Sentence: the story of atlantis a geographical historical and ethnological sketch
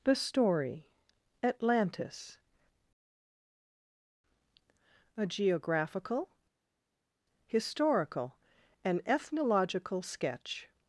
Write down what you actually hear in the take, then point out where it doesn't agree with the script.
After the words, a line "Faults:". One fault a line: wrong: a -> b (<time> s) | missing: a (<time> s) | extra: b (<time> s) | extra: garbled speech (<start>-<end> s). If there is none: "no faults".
the story atlantis a geographical historical and ethnological sketch
Faults:
missing: of (0.9 s)